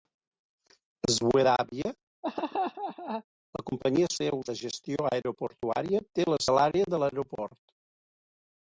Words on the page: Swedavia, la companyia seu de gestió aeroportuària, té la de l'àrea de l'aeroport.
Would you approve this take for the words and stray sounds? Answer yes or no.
no